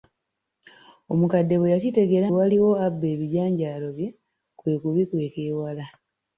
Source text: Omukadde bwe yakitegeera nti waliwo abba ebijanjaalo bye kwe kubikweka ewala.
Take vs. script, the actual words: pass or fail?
fail